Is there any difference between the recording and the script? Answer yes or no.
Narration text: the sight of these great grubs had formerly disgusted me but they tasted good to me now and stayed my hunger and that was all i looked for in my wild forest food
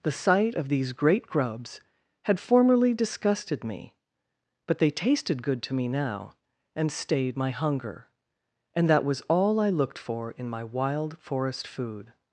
no